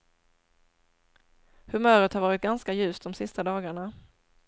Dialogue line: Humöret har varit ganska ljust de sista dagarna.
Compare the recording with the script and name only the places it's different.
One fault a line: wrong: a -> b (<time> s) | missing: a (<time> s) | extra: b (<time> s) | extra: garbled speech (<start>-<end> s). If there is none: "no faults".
no faults